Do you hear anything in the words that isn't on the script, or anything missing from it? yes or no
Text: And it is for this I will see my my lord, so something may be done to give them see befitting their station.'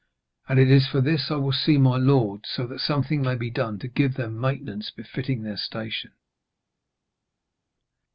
yes